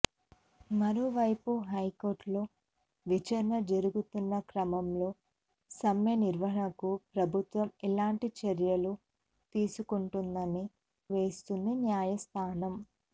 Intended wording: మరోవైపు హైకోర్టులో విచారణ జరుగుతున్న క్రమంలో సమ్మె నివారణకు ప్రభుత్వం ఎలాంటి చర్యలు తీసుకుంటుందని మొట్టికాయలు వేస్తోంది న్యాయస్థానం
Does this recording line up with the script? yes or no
no